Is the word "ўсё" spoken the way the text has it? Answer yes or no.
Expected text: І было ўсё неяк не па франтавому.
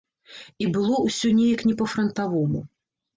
yes